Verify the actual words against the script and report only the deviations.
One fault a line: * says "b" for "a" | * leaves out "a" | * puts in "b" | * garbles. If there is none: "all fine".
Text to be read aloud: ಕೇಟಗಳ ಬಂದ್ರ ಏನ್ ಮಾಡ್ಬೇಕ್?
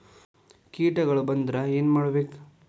all fine